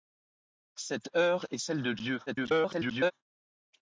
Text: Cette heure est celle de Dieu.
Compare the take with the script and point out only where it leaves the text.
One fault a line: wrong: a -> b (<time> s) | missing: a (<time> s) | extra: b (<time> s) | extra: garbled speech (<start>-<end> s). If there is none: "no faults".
extra: garbled speech (2.3-3.1 s)